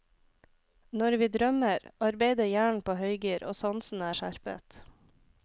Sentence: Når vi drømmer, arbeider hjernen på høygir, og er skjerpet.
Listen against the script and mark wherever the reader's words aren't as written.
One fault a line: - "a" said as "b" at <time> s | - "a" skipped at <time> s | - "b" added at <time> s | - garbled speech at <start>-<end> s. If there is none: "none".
- "sansene" added at 3.6 s